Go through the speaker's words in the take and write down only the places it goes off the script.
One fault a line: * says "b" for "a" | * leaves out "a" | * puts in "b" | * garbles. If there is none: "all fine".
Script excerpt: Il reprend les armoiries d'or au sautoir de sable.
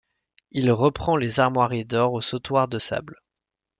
all fine